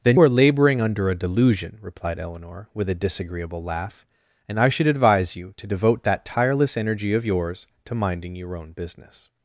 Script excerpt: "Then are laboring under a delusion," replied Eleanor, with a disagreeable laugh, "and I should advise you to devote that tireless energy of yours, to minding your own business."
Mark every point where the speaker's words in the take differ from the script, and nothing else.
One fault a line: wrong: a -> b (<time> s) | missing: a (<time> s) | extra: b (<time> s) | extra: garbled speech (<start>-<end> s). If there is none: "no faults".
no faults